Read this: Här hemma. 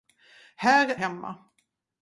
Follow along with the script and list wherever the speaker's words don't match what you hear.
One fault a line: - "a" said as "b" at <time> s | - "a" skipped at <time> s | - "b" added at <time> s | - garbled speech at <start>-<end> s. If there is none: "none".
none